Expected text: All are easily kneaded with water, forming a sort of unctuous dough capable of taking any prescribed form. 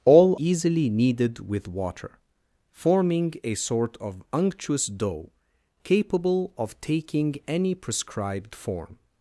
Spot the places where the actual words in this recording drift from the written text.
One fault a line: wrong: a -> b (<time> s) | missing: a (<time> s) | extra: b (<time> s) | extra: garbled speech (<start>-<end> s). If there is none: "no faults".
missing: are (0.3 s)